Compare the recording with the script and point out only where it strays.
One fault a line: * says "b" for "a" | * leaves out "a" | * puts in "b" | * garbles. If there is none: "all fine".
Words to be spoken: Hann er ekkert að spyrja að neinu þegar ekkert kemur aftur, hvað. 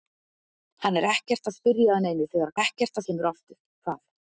all fine